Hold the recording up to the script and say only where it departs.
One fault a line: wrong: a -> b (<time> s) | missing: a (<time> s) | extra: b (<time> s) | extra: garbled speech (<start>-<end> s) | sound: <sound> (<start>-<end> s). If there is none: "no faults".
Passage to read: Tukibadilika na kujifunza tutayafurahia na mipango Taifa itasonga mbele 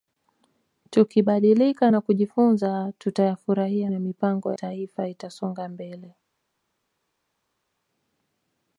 no faults